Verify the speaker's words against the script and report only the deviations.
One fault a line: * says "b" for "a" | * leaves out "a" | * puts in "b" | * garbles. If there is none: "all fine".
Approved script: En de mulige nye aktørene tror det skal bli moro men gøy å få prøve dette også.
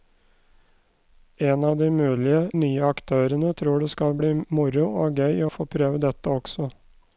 * puts in "av"
* says "og" for "men"